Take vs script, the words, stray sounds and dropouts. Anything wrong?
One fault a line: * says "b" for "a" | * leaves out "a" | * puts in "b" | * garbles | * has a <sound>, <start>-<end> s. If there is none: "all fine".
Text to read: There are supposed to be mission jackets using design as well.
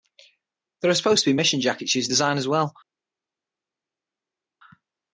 all fine